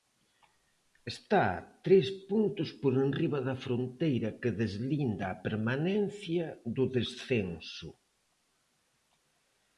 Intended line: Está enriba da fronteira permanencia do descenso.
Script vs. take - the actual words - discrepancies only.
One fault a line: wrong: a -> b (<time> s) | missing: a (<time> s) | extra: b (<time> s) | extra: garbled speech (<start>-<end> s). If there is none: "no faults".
extra: tres puntos por (1.9 s)
extra: que deslinda a (4.4 s)